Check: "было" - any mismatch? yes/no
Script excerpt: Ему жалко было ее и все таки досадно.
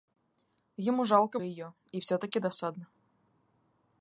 yes